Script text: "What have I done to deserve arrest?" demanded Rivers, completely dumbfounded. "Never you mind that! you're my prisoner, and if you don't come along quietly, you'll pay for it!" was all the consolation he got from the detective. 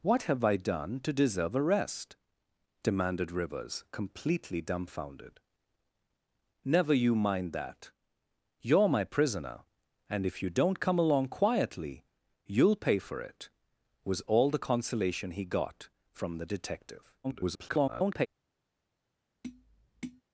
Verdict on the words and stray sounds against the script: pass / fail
fail